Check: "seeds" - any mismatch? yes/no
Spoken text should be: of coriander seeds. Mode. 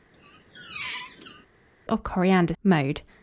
yes